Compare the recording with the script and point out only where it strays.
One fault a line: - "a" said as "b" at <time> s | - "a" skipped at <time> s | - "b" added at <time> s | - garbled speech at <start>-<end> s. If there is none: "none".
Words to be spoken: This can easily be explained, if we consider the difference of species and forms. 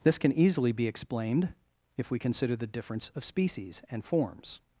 none